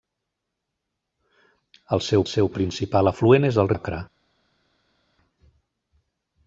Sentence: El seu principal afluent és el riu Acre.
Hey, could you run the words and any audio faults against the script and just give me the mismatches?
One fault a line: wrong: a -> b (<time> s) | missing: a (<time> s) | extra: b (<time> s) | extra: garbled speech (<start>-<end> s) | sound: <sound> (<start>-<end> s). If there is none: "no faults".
extra: seu (2.3 s)
missing: riu (3.7 s)